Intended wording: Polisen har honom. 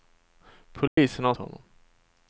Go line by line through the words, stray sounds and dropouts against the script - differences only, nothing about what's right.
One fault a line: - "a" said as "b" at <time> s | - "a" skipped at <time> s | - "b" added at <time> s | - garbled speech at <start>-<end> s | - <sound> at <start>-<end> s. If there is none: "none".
- dropout at 0.9-1.0 s